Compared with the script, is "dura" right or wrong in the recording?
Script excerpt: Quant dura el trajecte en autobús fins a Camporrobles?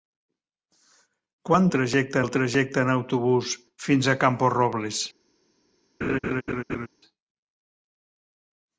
wrong